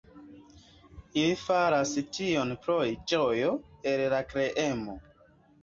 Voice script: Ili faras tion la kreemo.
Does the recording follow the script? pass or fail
fail